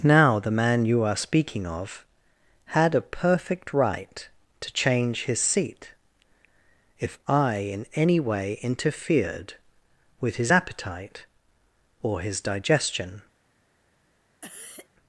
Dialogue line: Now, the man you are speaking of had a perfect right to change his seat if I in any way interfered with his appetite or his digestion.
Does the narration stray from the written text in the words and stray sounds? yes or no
yes